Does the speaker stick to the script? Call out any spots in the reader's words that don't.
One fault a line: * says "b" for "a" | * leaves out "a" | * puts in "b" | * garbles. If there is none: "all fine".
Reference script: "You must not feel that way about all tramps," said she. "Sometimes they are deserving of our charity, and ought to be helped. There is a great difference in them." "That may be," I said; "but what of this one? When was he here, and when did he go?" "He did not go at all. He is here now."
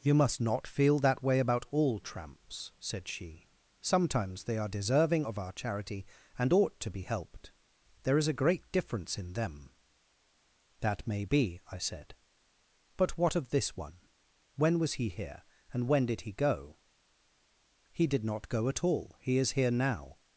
all fine